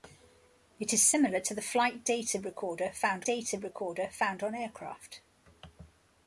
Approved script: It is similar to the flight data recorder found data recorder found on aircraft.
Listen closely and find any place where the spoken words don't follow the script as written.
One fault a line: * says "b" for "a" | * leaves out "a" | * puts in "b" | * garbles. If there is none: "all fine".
all fine